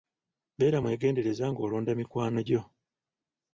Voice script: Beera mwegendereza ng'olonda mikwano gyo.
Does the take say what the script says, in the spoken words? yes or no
yes